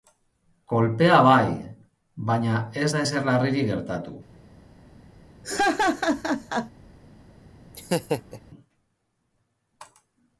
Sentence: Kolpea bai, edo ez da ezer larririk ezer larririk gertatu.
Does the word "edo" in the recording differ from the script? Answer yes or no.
yes